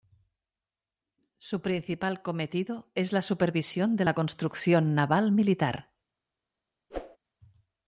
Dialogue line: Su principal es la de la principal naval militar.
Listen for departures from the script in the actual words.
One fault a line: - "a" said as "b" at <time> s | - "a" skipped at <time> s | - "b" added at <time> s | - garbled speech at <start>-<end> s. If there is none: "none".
- "cometido" added at 2.2 s
- "supervisión" added at 3.2 s
- "principal" said as "construcción" at 4.1 s